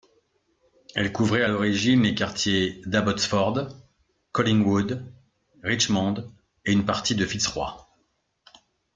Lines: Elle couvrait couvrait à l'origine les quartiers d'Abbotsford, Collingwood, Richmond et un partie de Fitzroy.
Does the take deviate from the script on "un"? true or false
true